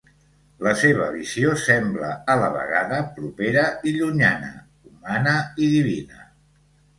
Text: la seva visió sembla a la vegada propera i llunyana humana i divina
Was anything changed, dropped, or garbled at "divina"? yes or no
no